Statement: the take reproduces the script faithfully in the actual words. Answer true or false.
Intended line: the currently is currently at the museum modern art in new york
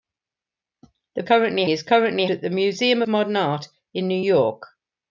true